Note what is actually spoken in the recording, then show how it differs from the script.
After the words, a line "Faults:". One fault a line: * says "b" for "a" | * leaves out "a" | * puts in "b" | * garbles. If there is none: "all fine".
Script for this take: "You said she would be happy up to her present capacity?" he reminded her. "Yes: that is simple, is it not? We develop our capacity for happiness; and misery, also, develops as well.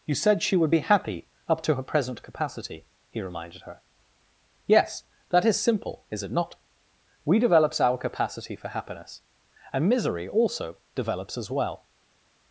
"You said she would be happy up to her present capacity?" he reminded her. "Yes: that is simple, is it not? We develops our capacity for happiness; and misery, also, develops as well.
Faults:
* says "develops" for "develop"